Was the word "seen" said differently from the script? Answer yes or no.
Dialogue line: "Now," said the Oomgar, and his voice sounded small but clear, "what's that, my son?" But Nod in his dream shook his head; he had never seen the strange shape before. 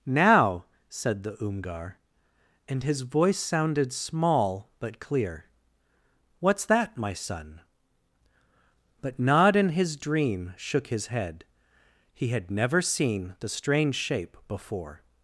no